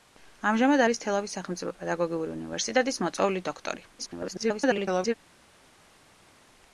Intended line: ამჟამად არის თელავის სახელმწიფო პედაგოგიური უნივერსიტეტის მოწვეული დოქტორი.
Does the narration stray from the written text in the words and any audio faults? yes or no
yes